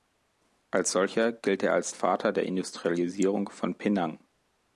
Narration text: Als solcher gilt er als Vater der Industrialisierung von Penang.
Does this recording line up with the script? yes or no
yes